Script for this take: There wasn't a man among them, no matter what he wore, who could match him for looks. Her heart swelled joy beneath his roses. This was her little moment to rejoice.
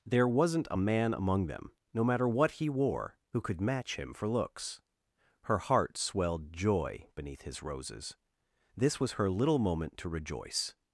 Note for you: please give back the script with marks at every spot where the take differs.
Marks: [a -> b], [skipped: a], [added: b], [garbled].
There wasn't a man among them, no matter what he wore, who could match him for looks. Her heart swelled joy beneath his roses. This was her little moment to rejoice.